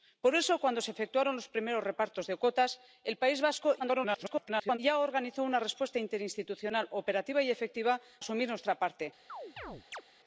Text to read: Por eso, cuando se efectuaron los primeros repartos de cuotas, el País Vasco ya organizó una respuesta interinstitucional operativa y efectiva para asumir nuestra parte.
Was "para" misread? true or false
true